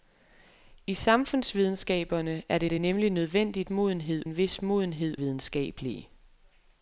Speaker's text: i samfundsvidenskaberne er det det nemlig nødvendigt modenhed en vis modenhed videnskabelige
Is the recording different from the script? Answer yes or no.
no